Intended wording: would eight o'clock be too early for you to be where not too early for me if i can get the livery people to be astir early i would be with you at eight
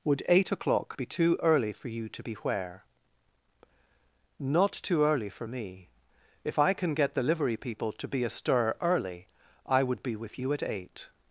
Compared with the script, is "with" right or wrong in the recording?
right